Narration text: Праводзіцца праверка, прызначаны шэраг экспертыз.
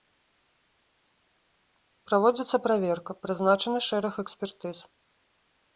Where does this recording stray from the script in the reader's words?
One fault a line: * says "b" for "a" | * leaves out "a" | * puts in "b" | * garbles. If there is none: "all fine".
all fine